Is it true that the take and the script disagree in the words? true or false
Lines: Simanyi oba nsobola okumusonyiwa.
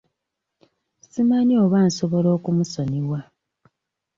false